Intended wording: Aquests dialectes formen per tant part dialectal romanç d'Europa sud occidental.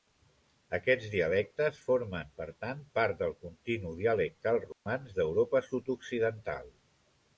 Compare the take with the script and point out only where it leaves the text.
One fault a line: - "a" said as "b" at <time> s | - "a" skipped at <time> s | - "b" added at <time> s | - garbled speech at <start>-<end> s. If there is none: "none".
- "del continu" added at 3.2 s